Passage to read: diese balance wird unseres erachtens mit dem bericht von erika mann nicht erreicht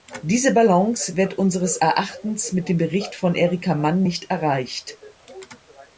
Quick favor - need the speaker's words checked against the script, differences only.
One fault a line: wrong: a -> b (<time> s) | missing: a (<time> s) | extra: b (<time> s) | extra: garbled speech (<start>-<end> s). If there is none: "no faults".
no faults